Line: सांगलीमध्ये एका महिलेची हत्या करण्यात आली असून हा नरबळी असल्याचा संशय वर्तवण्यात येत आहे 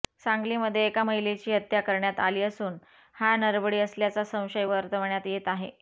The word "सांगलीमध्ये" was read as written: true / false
true